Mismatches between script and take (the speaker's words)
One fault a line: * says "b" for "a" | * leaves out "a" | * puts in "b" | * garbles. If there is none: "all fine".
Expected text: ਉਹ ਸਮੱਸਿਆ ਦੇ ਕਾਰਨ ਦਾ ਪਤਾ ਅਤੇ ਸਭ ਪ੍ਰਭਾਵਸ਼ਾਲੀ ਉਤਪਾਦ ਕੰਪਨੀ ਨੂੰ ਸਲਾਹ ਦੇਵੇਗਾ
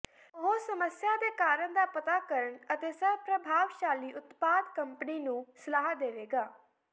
* puts in "ਕਰਨ"